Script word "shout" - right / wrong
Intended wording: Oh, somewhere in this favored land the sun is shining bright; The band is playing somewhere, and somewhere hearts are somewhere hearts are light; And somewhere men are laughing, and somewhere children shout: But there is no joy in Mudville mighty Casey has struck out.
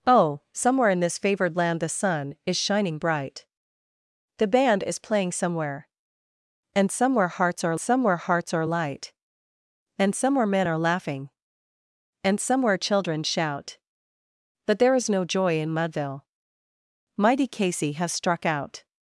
right